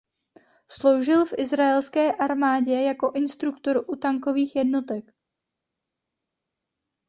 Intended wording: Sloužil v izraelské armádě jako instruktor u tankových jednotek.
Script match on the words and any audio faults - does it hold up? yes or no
yes